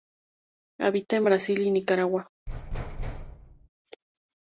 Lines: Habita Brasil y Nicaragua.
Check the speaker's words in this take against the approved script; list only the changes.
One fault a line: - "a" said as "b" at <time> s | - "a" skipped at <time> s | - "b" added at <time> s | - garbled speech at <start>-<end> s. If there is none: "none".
- "en" added at 1.2 s